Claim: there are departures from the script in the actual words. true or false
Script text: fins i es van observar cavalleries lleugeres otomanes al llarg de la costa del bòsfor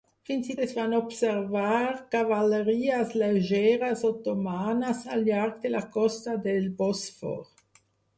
false